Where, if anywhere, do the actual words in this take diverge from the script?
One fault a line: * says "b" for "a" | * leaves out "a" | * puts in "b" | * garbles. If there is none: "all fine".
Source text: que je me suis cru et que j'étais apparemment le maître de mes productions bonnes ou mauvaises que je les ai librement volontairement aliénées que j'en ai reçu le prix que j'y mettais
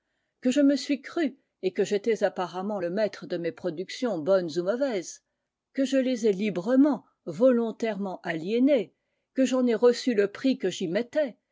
all fine